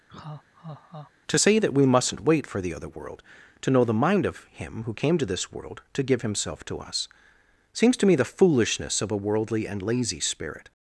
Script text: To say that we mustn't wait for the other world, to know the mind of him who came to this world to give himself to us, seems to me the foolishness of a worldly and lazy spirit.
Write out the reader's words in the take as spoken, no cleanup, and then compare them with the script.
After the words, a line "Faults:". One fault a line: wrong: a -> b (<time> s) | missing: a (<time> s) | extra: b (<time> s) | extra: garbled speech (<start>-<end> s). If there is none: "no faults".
To say that we mustn't wait for the other world, to know the mind of him who came to this world to give himself to us, seems to me the foolishness of a worldly and lazy spirit.
Faults:
no faults